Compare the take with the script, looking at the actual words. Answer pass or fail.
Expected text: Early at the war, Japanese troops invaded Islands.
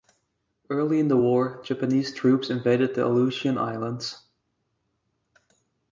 fail